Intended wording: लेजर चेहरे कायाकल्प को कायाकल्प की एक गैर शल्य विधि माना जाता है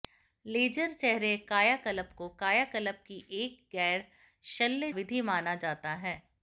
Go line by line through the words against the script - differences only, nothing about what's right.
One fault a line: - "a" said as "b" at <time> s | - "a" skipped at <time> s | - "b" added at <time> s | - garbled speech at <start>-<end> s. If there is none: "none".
none